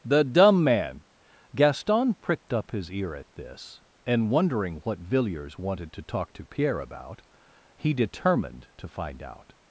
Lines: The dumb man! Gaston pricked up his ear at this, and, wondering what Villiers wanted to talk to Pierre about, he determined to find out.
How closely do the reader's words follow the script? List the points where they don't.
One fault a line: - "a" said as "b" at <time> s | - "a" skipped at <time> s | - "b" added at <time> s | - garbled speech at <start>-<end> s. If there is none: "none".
none